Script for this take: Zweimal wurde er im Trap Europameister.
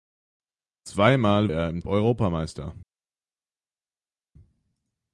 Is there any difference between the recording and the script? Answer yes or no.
yes